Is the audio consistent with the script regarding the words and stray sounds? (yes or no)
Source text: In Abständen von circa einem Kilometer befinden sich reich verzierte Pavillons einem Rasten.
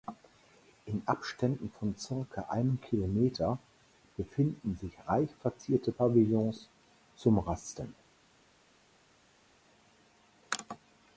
no